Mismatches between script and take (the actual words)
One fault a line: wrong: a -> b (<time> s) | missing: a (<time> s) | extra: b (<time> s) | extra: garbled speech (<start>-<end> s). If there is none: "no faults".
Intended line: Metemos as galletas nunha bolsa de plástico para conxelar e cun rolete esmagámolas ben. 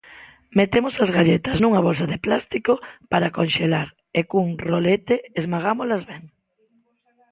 no faults